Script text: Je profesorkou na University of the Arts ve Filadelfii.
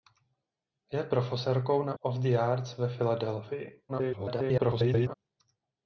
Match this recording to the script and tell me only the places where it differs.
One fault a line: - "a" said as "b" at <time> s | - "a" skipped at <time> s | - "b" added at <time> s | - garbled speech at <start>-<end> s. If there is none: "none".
- "University" skipped at 2.0 s
- garbled speech at 3.9-5.1 s